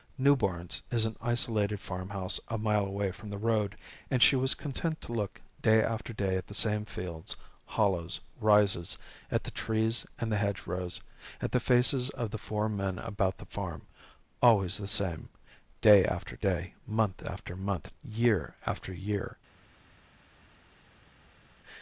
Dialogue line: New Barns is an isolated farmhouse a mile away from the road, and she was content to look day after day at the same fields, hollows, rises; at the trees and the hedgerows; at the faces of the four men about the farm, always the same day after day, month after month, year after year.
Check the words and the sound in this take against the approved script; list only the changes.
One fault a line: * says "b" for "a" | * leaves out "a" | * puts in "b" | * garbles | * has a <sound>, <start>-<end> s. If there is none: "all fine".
all fine